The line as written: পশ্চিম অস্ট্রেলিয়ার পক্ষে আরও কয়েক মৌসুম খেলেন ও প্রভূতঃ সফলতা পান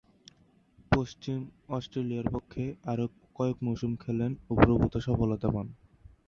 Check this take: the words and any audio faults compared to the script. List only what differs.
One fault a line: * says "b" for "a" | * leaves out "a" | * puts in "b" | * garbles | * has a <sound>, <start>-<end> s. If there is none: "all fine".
all fine